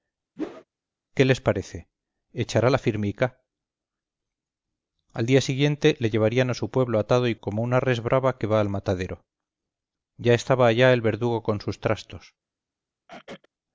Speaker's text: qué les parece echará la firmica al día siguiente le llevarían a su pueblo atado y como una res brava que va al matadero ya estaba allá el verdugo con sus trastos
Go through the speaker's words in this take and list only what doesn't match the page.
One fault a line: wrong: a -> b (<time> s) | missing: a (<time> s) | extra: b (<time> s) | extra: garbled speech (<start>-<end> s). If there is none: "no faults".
no faults